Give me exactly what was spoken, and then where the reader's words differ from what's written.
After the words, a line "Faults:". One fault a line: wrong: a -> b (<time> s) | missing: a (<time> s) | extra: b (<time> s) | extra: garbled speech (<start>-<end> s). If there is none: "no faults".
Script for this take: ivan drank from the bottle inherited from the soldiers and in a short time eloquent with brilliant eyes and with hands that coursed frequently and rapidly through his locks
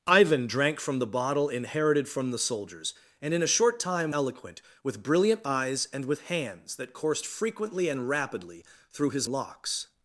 ivan drank from the bottle inherited from the soldiers and in a short time eloquent with brilliant eyes and with hands that coursed frequently and rapidly through his locks
Faults:
no faults